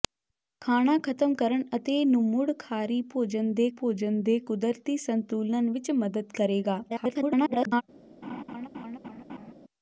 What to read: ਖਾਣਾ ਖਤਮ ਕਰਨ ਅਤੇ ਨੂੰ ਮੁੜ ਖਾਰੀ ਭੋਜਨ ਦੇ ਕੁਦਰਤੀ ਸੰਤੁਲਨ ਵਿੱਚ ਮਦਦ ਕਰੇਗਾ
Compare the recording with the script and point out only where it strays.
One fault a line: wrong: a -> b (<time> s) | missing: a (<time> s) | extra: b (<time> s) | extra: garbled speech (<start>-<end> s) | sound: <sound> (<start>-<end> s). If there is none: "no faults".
extra: ਭੋਜਨ ਦੇ (3.8 s)
extra: garbled speech (6.9-7.8 s)
sound: laugh (8.2-9.5 s)